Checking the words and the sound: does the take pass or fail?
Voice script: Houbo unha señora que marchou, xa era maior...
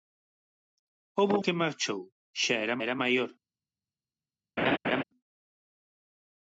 fail